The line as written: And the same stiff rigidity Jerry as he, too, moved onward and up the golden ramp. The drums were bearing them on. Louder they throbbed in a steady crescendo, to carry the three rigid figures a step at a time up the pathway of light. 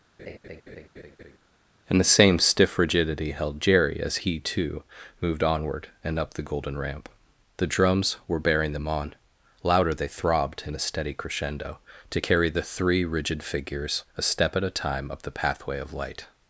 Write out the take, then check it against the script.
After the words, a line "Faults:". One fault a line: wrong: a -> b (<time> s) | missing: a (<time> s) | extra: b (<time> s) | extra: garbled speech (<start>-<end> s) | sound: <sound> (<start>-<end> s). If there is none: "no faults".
And the same stiff rigidity held Jerry as he, too, moved onward and up the golden ramp. The drums were bearing them on. Louder they throbbed in a steady crescendo, to carry the three rigid figures a step at a time up the pathway of light.
Faults:
sound: laugh (0.2-1.4 s)
extra: held (3.3 s)